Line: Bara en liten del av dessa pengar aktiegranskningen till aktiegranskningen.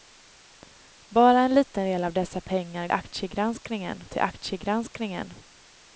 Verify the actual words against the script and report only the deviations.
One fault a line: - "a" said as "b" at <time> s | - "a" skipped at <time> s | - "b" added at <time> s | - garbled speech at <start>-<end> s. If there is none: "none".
none